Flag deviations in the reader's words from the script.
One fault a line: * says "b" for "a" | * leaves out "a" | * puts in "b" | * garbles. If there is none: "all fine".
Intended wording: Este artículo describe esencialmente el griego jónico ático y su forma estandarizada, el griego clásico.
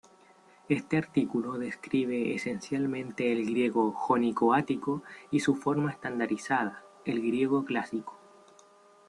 all fine